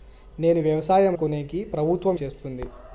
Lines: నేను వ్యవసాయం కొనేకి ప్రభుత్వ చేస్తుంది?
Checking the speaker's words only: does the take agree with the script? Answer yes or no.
yes